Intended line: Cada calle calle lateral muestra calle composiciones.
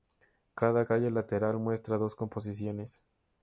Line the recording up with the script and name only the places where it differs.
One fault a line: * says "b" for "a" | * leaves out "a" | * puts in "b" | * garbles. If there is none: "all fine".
* leaves out "calle"
* says "dos" for "calle"